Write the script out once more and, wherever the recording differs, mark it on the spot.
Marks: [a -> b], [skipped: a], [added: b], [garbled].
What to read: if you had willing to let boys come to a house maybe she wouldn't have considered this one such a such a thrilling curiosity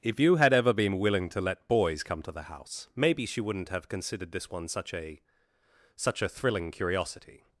if you had [added: ever been] willing to let boys come to [a -> the] house maybe she wouldn't have considered this one such a such a thrilling curiosity